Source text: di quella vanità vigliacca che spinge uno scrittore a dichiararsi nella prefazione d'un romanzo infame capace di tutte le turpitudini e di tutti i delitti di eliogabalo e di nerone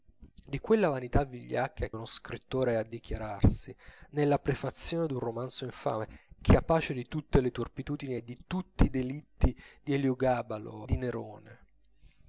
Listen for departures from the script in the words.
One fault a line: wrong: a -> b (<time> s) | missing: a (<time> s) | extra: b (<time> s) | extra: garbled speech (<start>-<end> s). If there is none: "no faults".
missing: che spinge (1.9 s)
missing: e (10.9 s)